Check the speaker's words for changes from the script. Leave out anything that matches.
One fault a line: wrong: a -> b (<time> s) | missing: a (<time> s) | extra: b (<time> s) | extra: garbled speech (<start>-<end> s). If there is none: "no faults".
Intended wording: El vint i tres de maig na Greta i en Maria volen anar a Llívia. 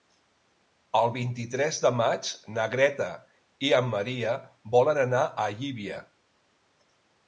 no faults